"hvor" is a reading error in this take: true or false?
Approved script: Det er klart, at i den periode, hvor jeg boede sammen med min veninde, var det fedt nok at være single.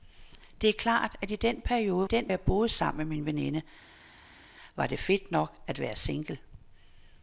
true